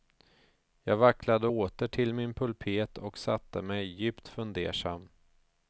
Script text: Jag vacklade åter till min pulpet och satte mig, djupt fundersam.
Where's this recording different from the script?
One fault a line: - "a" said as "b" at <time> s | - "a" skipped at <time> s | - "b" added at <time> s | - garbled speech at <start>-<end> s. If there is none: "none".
none